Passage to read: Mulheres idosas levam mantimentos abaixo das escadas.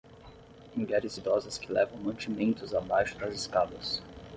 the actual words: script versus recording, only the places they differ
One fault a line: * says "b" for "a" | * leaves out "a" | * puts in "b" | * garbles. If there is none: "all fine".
* puts in "que"